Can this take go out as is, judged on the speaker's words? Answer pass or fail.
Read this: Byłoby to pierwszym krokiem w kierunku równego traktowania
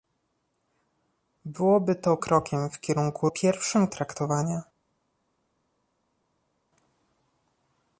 fail